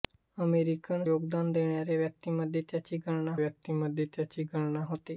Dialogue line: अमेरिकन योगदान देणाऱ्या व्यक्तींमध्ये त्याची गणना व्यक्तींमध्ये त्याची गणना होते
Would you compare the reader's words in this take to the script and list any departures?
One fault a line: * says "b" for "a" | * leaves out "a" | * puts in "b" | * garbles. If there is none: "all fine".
all fine